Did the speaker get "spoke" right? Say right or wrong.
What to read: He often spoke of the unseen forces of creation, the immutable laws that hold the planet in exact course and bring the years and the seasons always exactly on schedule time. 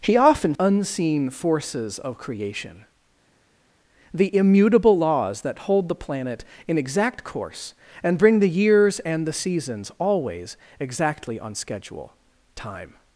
wrong